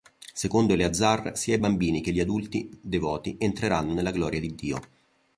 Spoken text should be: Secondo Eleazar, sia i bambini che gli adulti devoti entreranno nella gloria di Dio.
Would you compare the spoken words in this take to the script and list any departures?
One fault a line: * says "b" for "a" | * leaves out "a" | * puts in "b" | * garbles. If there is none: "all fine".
all fine